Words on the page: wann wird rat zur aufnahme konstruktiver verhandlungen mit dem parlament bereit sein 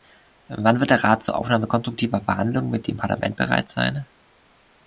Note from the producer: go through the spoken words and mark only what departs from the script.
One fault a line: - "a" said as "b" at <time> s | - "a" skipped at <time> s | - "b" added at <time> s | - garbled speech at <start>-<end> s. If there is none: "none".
- "der" added at 0.9 s